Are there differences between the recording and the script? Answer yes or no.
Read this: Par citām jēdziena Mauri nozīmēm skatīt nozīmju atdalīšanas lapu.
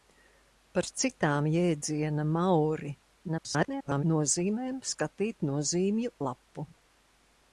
yes